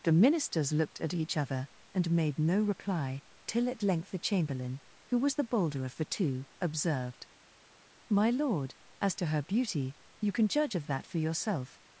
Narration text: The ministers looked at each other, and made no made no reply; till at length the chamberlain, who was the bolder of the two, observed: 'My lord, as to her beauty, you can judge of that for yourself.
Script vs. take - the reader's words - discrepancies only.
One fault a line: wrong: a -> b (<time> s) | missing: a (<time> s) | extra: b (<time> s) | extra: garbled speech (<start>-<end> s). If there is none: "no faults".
missing: made no (2.6 s)